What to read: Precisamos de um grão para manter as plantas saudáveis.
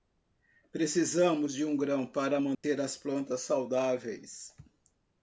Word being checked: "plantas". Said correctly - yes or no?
yes